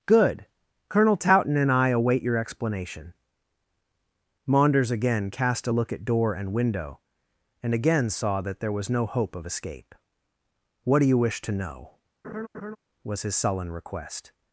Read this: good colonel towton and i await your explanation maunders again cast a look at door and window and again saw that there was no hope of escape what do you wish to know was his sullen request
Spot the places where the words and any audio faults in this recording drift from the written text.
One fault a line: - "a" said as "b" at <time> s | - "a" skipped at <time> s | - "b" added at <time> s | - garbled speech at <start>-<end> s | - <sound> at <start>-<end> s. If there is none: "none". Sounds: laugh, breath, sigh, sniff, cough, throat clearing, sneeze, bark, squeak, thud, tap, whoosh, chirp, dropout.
- laugh at 12.2-12.8 s